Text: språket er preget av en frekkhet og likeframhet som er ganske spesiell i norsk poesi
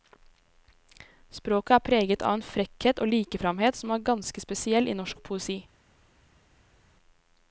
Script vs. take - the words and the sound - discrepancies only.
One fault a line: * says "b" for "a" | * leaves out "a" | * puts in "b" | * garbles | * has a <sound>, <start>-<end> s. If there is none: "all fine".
all fine